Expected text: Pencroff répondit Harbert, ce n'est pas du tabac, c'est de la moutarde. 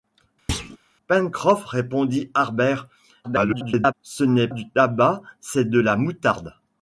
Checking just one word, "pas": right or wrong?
wrong